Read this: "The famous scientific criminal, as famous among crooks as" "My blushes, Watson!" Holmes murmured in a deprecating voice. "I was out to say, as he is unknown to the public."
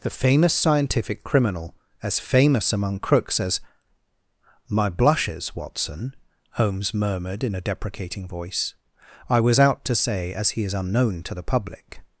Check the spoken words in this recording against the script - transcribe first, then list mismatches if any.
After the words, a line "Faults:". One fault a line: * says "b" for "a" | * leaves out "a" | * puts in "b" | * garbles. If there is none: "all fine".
"The famous scientific criminal, as famous among crooks as" "My blushes, Watson!" Holmes murmured in a deprecating voice. "I was out to say, as he is unknown to the public."
Faults:
all fine